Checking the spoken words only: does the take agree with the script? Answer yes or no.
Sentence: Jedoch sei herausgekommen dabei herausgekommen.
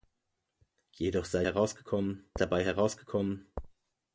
yes